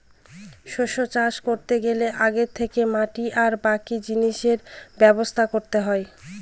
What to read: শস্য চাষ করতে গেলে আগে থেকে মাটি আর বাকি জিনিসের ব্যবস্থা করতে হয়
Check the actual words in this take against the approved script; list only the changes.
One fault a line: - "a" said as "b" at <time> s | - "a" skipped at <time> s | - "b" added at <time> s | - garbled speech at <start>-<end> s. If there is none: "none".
none